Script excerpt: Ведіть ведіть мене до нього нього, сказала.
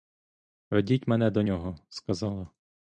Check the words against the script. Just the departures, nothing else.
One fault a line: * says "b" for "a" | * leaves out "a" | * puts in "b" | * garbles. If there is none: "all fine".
* leaves out "ведіть"
* leaves out "нього"